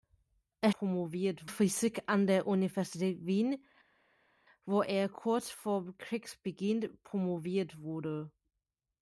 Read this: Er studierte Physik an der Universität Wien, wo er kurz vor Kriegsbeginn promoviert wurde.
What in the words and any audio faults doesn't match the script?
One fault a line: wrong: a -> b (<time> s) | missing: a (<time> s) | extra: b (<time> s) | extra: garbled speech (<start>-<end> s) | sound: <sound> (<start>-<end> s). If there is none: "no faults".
wrong: studierte -> promoviert (0.7 s)